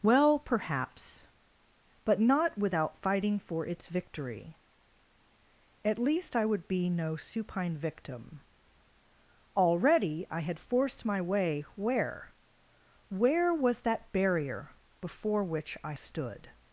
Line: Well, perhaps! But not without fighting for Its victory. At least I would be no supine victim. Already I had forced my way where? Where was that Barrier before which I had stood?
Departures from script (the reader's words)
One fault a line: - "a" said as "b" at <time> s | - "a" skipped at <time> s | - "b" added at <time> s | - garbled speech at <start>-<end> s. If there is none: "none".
- "had" skipped at 15.9 s